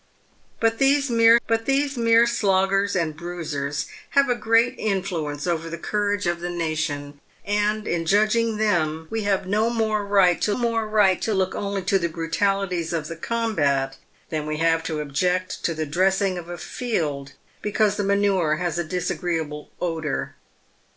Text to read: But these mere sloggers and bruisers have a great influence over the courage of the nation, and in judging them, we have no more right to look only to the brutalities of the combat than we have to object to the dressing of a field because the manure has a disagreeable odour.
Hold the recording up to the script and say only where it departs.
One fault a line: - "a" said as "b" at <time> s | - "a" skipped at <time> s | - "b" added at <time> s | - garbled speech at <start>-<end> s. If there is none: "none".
- "but these mere" added at 1.5 s
- "more right to" added at 10.5 s